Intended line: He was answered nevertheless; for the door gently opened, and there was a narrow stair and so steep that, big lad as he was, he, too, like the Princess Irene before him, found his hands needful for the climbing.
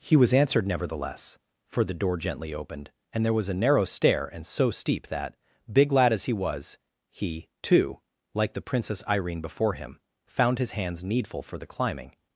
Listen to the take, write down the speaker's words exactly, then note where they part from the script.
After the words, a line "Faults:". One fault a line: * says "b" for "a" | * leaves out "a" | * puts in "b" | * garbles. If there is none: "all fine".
He was answered nevertheless; for the door gently opened, and there was a narrow stair and so steep that, big lad as he was, he, too, like the Princess Irene before him, found his hands needful for the climbing.
Faults:
all fine